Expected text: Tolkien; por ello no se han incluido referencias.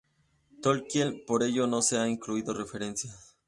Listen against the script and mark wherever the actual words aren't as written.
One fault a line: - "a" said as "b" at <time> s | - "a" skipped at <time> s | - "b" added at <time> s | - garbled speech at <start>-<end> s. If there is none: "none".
none